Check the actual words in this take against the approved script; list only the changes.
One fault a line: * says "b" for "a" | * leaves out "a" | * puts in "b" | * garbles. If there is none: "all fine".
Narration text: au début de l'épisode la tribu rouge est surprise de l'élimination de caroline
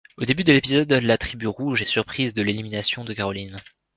all fine